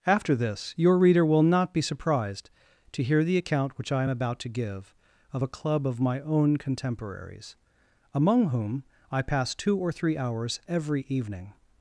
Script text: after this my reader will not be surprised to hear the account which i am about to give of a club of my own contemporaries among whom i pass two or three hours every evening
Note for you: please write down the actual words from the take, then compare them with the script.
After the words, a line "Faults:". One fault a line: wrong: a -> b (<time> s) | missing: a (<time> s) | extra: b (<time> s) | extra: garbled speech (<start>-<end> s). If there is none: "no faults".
after this your reader will not be surprised to hear the account which i am about to give of a club of my own contemporaries among whom i pass two or three hours every evening
Faults:
wrong: my -> your (0.8 s)